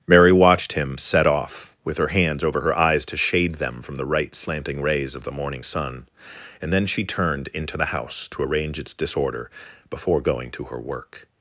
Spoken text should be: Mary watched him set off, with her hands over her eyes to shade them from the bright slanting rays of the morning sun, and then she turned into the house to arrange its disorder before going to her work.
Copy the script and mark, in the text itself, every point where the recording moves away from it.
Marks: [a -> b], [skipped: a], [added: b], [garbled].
Mary watched him set off, with her hands over her eyes to shade them from the [bright -> right] slanting rays of the morning sun, and then she turned into the house to arrange its disorder before going to her work.